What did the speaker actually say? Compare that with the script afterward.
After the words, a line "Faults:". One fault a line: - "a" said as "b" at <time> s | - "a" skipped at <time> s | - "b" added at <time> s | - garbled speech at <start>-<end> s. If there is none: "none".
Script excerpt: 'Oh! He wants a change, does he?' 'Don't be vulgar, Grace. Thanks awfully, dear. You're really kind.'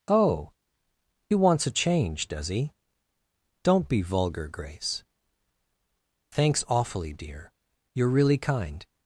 'Oh! He wants a change, does he?' 'Don't be vulgar, Grace. Thanks awfully, dear. You're really kind.'
Faults:
none